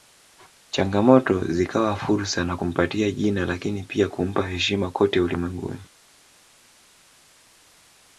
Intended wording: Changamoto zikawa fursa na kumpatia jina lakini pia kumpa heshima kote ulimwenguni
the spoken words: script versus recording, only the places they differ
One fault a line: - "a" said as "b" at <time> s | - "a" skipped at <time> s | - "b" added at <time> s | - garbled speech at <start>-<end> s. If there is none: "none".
none